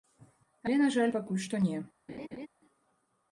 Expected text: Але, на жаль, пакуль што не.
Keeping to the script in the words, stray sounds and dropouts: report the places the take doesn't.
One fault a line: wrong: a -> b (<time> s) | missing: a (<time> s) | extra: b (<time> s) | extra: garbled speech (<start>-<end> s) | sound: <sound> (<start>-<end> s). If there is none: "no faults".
sound: laugh (2.1-2.5 s)